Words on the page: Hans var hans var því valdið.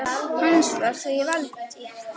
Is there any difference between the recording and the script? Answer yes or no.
yes